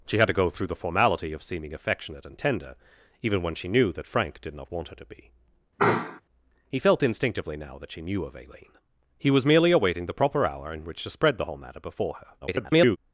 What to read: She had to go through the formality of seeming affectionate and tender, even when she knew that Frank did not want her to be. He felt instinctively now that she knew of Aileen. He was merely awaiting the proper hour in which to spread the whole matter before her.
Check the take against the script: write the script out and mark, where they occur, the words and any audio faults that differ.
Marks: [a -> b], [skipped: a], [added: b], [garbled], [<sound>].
She had to go through the formality of seeming affectionate and tender, even when she knew that Frank did not want her to be. [sneeze] He felt instinctively now that she knew of Aileen. He was merely awaiting the proper hour in which to spread the whole matter before her. [garbled]